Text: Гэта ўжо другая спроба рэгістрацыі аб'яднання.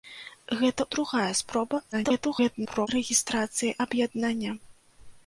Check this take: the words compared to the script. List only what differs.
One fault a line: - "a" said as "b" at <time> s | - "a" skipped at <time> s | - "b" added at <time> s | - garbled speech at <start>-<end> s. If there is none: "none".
- "ўжо" skipped at 0.8 s
- garbled speech at 1.9-2.9 s